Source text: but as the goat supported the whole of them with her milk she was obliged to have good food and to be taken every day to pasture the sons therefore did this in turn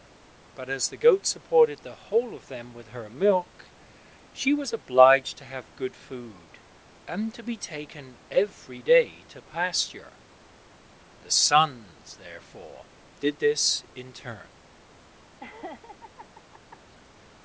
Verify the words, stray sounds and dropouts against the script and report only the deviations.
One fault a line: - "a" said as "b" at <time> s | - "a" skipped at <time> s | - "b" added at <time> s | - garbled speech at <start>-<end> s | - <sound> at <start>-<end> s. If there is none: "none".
- laugh at 15.4-16.8 s